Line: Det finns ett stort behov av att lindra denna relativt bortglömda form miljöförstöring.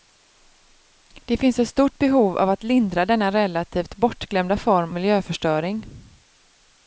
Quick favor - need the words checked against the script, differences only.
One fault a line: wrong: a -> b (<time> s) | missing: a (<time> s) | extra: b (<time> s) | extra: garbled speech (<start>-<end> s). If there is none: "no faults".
no faults